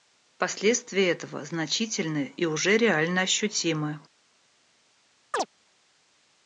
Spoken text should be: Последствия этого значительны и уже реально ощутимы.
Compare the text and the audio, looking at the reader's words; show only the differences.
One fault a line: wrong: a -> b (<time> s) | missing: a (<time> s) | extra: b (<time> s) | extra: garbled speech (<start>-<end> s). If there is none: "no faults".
no faults